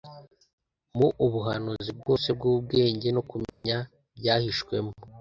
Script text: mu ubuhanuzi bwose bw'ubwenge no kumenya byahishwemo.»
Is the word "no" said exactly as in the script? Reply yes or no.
yes